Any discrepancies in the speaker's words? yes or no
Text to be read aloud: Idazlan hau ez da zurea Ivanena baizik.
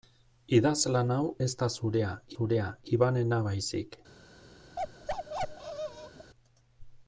yes